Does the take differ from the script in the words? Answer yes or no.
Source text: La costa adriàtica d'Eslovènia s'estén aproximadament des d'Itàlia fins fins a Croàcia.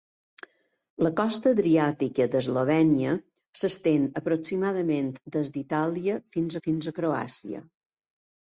no